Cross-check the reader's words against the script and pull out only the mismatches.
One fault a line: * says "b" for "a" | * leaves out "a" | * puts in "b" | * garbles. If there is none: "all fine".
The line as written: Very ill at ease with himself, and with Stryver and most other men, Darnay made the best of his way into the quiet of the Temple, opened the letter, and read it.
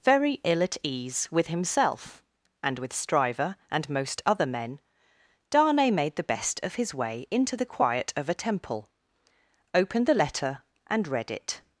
* says "a" for "the"